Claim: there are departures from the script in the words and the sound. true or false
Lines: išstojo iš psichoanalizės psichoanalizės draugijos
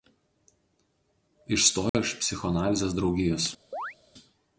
true